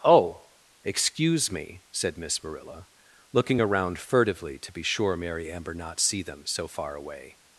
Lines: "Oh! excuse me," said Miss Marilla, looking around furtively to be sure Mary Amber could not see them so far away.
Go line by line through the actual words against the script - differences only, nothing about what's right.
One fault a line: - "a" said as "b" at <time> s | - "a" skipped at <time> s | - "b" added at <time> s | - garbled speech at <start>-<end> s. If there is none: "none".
- "could" skipped at 5.7 s